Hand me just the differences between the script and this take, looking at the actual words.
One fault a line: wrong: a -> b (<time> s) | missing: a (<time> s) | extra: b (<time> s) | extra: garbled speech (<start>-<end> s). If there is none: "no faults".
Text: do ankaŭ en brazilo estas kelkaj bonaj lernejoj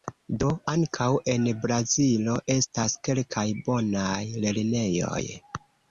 no faults